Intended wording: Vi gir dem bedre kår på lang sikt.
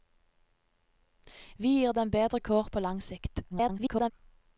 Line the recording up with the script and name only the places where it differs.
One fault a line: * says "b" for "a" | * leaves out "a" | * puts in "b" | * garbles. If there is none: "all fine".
* garbles